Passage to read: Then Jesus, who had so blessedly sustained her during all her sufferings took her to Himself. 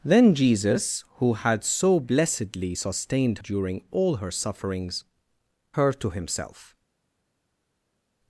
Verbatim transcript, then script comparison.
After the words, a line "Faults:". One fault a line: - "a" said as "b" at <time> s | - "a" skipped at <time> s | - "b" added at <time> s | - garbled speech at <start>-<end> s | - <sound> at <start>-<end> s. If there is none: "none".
Then Jesus, who had so blessedly sustained during all her sufferings her to Himself.
Faults:
- "her" skipped at 3.4 s
- "took" skipped at 5.0 s